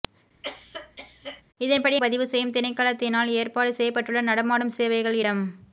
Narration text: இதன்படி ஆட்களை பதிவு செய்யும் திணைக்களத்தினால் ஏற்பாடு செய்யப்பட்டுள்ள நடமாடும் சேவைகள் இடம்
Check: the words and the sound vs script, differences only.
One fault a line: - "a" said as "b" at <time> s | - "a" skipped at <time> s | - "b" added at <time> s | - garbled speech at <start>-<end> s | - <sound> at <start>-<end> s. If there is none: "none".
- cough at 0.4-1.4 s
- "ஆட்களை" skipped at 2.0 s